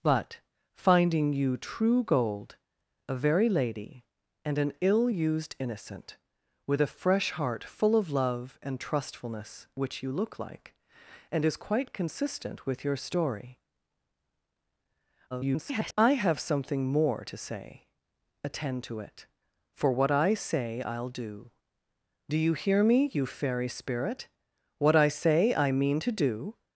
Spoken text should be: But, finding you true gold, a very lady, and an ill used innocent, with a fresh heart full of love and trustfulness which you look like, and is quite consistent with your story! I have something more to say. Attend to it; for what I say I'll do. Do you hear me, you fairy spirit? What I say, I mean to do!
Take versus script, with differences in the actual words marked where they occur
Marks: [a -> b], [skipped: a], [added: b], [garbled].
But, finding you true gold, a very lady, and an ill used innocent, with a fresh heart full of love and trustfulness which you look like, and is quite consistent with your story! [garbled] I have something more to say. Attend to it; for what I say I'll do. Do you hear me, you fairy spirit? What I say, I mean to do!